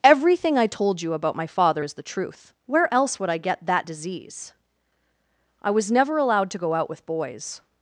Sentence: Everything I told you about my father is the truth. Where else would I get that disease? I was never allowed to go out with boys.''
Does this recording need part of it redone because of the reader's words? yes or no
no